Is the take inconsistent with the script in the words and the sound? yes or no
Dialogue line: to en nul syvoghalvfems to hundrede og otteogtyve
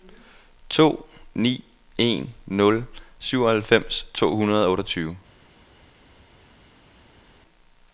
yes